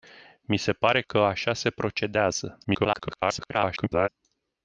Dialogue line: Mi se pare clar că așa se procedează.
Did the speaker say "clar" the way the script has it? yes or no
no